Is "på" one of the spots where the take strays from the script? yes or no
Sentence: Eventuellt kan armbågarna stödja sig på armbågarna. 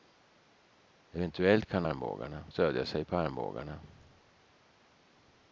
no